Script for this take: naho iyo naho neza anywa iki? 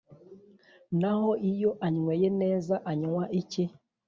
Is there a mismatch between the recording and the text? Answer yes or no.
yes